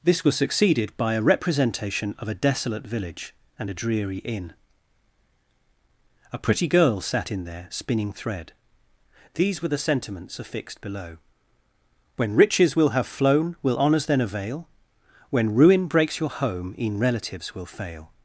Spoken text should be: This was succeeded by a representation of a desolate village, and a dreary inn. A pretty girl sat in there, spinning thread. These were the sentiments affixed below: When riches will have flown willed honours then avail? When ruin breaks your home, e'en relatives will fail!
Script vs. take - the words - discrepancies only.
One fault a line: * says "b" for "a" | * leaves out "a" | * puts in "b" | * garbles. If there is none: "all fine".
* says "will" for "willed"